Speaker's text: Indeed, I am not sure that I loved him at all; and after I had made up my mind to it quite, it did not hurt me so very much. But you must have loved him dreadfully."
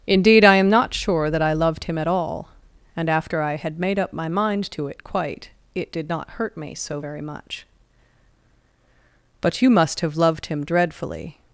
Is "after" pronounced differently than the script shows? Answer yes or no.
no